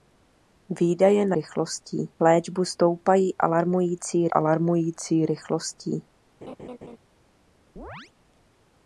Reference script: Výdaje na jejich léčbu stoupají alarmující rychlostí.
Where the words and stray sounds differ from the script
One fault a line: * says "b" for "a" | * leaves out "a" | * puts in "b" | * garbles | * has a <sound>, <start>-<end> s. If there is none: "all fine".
* says "rychlostí" for "jejich"
* puts in "alarmující"
* has a laugh, 6.4-7.0 s
* has a chirp, 7.8-8.1 s